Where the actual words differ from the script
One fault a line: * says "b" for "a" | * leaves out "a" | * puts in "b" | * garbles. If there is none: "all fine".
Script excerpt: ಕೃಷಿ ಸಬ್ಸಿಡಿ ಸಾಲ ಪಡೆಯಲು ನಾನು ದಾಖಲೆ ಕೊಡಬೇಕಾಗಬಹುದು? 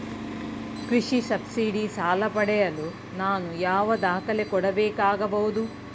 * puts in "ಯಾವ"